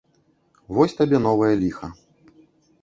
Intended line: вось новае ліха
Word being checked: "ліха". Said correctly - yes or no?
yes